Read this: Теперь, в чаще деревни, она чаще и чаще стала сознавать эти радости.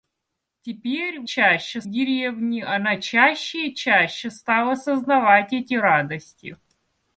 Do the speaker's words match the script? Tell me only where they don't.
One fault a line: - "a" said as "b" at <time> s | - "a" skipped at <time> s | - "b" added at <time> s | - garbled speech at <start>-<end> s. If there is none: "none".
none